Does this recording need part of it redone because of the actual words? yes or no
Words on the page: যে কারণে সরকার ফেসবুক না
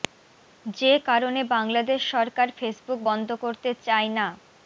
yes